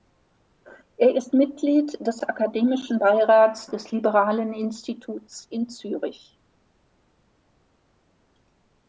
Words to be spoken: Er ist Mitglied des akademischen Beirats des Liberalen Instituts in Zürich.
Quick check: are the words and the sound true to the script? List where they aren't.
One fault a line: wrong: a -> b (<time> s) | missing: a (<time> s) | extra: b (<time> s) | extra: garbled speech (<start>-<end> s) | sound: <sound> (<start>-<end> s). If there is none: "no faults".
no faults